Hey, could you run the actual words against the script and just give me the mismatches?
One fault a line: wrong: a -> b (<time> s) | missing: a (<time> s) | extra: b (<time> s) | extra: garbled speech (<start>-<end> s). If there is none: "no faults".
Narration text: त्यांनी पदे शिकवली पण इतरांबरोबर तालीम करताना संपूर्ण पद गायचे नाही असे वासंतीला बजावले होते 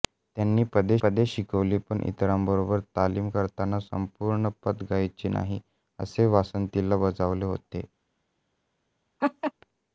extra: पदे (1.0 s)